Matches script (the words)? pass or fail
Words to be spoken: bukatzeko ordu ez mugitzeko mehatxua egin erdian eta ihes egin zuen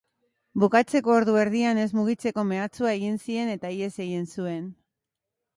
fail